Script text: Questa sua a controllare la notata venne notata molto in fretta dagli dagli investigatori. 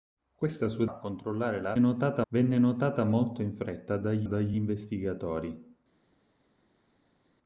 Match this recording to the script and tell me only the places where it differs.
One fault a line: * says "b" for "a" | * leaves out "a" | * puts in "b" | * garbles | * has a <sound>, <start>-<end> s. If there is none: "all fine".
all fine